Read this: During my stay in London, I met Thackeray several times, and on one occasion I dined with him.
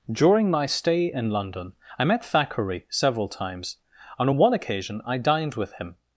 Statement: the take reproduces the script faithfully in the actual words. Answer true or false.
true